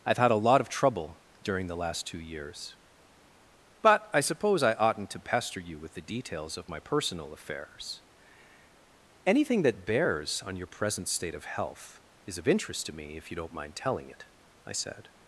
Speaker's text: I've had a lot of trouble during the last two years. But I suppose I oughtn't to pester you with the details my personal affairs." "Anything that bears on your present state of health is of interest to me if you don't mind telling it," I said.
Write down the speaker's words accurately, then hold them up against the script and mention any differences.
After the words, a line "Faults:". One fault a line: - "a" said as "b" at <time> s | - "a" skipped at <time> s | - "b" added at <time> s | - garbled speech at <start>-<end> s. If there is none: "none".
I've had a lot of trouble during the last two years. But I suppose I oughtn't to pester you with the details of my personal affairs." "Anything that bears on your present state of health is of interest to me if you don't mind telling it," I said.
Faults:
- "of" added at 6.6 s